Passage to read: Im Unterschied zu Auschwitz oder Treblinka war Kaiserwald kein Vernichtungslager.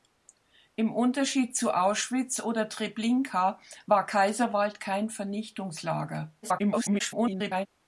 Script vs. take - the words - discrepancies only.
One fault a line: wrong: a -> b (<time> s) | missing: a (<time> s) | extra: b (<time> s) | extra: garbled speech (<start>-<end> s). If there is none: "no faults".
extra: garbled speech (6.4-7.7 s)